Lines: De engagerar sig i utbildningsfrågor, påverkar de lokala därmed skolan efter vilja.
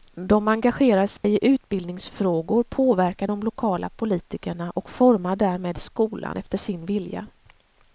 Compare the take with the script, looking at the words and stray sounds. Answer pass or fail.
fail